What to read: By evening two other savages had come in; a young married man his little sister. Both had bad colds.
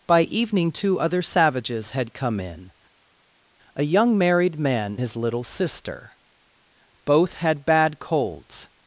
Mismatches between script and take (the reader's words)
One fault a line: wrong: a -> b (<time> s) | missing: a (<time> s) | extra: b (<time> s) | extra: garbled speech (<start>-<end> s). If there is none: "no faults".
no faults